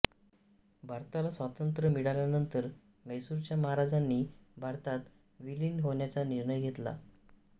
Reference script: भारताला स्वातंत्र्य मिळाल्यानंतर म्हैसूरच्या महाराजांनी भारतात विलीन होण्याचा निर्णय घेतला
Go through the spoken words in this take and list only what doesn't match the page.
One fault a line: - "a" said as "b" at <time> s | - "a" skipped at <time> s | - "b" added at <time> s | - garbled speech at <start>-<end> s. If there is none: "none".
none